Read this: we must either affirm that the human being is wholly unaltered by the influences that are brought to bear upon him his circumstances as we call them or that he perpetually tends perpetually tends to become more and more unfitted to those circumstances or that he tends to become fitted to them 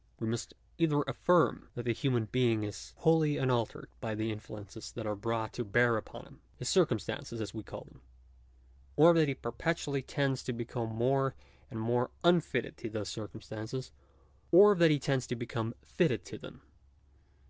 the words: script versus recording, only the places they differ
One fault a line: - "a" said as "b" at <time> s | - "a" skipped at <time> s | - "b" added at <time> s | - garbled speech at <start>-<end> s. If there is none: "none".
- "perpetually tends" skipped at 10.4 s